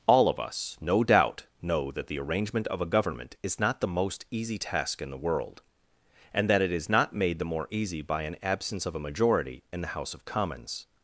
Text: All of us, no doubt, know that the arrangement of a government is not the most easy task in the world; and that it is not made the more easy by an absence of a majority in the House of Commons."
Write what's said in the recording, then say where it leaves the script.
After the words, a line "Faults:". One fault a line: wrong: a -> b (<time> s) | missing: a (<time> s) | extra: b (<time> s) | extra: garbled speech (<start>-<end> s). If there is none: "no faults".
All of us, no doubt, know that the arrangement of a government is not the most easy task in the world; and that it is not made the more easy by an absence of a majority in the House of Commons."
Faults:
no faults